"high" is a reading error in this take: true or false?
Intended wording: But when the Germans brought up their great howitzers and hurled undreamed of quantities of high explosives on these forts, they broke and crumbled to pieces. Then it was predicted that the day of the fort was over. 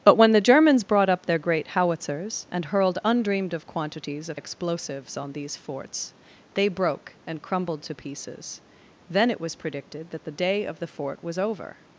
true